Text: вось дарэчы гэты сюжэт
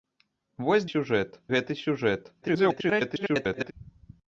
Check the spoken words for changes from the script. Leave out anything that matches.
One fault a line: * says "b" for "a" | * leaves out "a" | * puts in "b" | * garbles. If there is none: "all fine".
* says "сюжэт" for "дарэчы"
* garbles